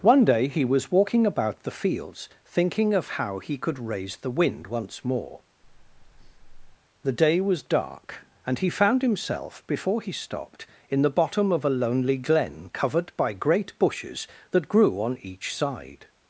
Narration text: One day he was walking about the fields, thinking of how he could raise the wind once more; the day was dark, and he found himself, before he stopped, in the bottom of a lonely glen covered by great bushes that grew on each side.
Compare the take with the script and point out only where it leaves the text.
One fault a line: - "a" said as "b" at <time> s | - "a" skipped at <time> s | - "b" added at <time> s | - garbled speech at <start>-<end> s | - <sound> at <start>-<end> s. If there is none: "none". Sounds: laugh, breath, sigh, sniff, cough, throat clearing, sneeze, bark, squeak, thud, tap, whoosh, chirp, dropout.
- breath at 5.6-6.8 s